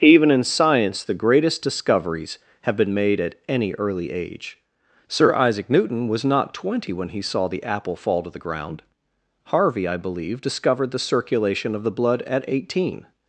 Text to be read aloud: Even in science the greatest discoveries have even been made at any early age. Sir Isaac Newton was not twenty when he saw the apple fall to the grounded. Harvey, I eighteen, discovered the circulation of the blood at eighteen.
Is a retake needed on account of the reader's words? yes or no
yes